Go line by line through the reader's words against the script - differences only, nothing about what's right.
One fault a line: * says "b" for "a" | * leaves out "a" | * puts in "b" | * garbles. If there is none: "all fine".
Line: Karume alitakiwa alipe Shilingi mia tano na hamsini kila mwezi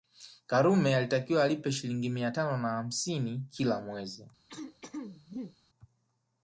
all fine